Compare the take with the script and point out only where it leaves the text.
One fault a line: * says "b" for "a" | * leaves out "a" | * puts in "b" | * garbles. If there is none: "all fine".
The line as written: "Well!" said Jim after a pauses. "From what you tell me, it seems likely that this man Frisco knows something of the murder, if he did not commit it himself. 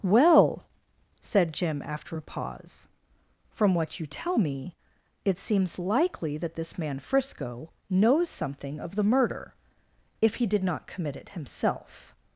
* says "pause" for "pauses"